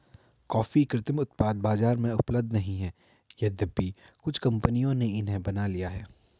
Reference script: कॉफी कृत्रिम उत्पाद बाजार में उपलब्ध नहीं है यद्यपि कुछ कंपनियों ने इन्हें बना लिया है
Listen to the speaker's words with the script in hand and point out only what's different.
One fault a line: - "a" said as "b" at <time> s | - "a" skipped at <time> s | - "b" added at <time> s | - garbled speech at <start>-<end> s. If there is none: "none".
none